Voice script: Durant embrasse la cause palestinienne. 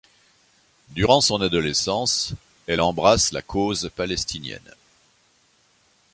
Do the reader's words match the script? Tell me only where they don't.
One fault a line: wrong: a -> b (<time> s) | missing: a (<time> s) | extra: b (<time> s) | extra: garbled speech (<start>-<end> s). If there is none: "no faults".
extra: son adolescence elle (1.2 s)